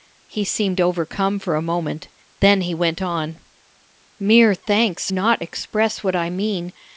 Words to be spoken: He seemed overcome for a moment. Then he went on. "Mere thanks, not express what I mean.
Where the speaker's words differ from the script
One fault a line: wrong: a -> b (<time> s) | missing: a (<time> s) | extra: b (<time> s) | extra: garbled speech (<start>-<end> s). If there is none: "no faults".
no faults